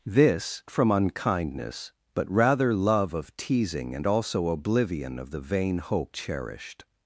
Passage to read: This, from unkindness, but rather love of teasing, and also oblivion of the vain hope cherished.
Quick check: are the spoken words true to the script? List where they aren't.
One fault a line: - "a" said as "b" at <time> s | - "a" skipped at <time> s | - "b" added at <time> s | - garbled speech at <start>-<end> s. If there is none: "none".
none